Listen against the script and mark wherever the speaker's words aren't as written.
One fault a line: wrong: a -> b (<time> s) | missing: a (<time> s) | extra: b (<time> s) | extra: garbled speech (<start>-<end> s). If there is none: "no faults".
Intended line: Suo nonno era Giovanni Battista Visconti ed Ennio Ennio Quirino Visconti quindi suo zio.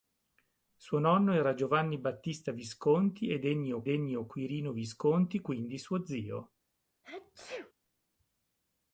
no faults